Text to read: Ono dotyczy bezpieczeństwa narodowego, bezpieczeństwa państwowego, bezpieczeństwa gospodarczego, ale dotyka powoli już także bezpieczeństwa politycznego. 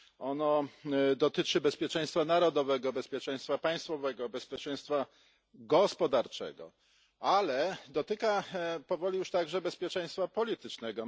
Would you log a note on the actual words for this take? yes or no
no